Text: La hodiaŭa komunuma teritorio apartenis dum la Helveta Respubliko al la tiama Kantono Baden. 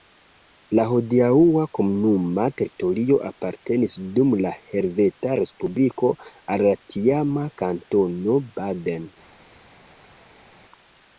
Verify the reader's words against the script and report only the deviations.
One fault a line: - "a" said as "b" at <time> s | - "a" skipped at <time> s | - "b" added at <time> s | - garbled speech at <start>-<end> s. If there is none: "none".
none